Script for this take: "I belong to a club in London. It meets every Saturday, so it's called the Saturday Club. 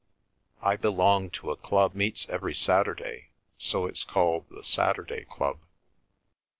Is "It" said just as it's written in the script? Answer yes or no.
no